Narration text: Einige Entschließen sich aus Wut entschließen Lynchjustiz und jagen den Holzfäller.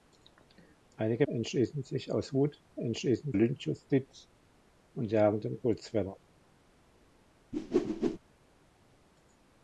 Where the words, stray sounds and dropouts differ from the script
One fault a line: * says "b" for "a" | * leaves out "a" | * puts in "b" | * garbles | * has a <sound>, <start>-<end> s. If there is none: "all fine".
* has a whoosh, 7.5-8.2 s